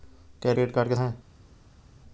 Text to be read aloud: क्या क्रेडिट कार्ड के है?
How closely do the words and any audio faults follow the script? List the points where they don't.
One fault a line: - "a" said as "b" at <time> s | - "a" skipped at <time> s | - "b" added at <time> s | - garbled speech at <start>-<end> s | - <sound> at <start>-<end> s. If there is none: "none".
none